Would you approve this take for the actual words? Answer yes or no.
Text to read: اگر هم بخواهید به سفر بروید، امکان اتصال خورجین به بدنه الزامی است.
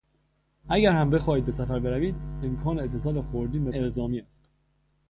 no